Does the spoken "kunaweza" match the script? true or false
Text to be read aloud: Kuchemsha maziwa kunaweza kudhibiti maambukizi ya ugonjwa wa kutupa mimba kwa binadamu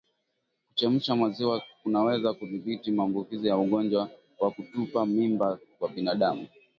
true